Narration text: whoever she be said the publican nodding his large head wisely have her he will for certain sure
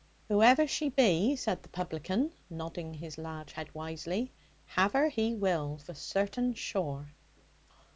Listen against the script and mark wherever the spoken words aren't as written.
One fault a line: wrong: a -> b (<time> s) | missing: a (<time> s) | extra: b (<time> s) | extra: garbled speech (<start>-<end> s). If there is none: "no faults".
no faults